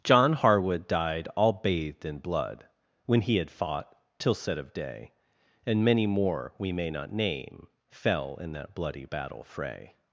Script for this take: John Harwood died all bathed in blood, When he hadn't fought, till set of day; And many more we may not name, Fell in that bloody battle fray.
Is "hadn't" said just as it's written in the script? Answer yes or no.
no